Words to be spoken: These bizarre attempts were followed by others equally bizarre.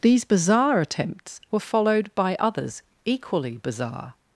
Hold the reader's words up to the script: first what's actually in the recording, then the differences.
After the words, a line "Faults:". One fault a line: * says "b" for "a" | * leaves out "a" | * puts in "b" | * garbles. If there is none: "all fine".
These bizarre attempts were followed by others equally bizarre.
Faults:
all fine